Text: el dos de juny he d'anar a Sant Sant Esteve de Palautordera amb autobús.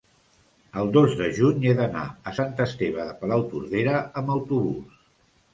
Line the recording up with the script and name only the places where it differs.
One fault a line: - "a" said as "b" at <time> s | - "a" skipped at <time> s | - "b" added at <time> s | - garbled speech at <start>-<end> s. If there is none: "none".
- "Sant" skipped at 2.5 s